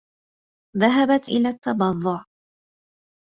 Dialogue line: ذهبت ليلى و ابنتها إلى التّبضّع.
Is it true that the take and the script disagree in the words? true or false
true